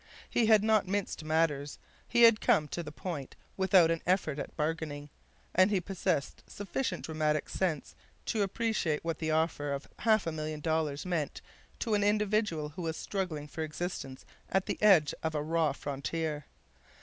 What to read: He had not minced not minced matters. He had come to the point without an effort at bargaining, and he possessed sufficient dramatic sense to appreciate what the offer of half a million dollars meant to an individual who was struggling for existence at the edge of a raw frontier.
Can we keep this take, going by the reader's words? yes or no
no